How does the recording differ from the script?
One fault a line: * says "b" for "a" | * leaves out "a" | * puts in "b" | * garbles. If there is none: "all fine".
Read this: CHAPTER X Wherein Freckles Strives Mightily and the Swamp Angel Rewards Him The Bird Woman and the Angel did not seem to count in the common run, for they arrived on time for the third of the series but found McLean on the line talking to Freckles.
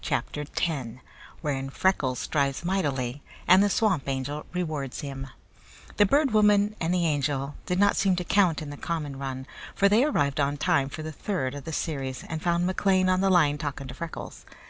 * says "and" for "but"